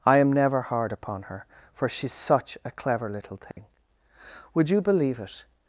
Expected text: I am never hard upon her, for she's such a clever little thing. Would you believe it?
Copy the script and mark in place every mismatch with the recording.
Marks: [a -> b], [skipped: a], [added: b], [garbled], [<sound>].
I am never hard upon her, for she's such a clever little thing. [dropout] Would you believe it?